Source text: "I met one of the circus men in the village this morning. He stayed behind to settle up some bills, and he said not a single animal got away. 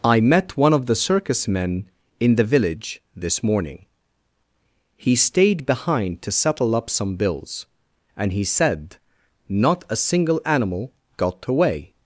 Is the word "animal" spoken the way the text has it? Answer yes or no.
yes